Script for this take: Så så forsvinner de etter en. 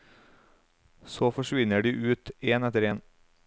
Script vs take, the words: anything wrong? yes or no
yes